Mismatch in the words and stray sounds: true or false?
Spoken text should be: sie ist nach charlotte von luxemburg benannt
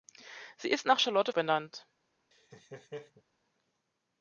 true